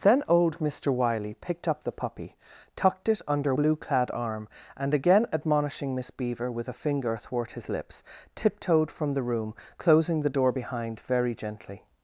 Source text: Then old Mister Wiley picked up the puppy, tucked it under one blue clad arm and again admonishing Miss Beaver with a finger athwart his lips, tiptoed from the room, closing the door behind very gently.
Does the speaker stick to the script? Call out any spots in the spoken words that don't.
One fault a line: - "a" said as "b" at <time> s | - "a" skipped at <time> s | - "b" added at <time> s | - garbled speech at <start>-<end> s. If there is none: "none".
- "one" skipped at 3.5 s